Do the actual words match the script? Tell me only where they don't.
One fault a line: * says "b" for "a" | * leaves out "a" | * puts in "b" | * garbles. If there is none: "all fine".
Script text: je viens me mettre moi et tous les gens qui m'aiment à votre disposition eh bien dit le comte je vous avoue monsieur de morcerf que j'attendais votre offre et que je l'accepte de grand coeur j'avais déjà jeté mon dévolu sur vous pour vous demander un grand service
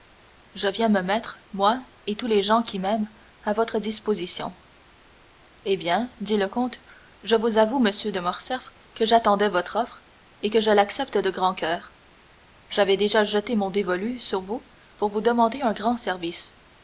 all fine